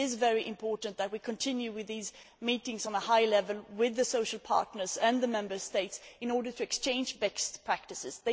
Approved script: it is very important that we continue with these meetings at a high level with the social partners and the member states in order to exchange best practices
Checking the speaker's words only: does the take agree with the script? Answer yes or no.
yes